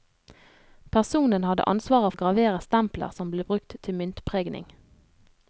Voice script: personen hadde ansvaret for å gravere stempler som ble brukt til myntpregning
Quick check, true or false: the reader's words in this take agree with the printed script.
false